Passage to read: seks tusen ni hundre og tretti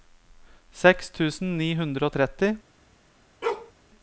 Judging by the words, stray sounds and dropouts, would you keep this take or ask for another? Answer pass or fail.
fail